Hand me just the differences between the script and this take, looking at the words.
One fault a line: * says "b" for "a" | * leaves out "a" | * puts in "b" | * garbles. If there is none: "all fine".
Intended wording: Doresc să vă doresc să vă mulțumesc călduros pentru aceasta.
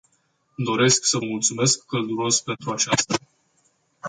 * leaves out "doresc să vă"